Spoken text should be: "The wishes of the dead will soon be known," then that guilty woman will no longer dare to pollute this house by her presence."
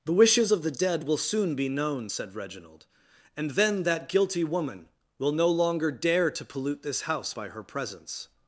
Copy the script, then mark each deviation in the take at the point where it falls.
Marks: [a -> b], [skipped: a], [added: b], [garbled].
"The wishes of the dead will soon be known," [added: said Reginald and] then that guilty woman will no longer dare to pollute this house by her presence."